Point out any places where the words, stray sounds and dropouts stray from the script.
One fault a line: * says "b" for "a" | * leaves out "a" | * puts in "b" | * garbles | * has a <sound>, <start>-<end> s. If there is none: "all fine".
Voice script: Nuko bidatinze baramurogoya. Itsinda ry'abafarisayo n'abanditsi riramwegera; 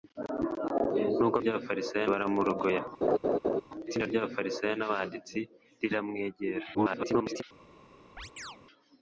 * says "ry'abafarisayo" for "bidatinze"
* has a laugh, 3.0-3.6 s
* garbles
* has a chirp, 8.2-8.6 s